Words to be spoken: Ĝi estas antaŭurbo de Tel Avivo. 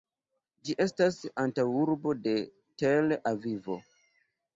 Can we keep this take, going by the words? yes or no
yes